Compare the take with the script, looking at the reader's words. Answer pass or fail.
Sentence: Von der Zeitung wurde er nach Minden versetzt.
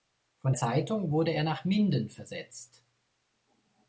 fail